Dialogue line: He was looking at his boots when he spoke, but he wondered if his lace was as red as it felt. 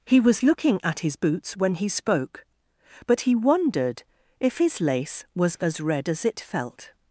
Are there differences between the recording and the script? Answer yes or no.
no